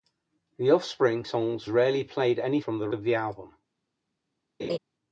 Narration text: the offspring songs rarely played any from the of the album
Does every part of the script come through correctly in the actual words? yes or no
yes